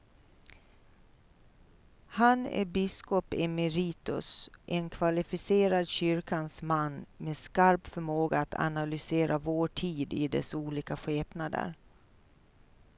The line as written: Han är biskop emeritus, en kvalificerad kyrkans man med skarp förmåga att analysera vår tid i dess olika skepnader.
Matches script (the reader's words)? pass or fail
pass